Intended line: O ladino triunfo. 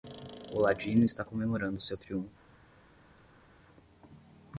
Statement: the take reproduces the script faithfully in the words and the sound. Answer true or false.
false